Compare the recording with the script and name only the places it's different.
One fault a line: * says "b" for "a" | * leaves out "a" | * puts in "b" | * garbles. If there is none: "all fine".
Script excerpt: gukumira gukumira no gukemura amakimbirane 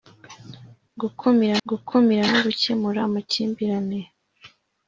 all fine